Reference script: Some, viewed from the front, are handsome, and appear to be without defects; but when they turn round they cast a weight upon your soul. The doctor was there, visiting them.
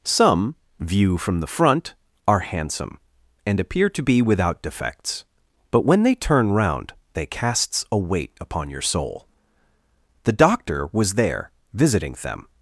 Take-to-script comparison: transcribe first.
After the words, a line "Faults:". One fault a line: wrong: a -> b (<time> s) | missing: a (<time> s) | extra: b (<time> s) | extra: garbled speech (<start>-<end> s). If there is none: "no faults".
Some, view from the front, are handsome, and appear to be without defects; but when they turn round they casts a weight upon your soul. The doctor was there, visiting them.
Faults:
wrong: viewed -> view (0.8 s)
wrong: cast -> casts (7.3 s)